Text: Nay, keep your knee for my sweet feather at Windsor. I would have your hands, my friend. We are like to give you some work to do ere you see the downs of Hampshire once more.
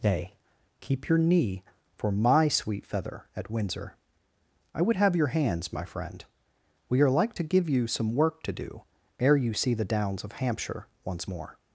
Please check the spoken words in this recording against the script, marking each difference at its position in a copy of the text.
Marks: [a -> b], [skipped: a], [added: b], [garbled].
Nay, keep your knee for my sweet feather at Windsor. I would have your hands, my friend. We are like to give you some work to do ere you see the downs of Hampshire once more.